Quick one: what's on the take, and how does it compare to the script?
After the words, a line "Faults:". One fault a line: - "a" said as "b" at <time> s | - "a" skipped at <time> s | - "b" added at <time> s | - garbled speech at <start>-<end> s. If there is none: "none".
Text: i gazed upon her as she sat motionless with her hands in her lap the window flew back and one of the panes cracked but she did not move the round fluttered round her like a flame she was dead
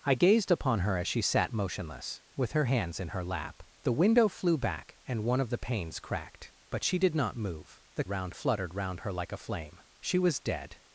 i gazed upon her as she sat motionless with her hands in her lap the window flew back and one of the panes cracked but she did not move the round fluttered round her like a flame she was dead
Faults:
none